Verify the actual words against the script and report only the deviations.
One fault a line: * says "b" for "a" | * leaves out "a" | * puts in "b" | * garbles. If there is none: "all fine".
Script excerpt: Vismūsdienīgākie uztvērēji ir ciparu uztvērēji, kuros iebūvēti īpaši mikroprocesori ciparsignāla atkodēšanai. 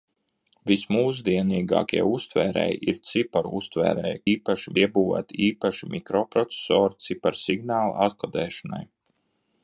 * says "īpaši" for "kuros"